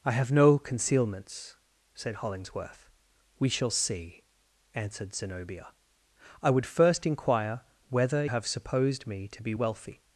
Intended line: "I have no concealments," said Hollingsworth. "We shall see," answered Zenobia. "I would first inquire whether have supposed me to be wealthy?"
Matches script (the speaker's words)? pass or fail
pass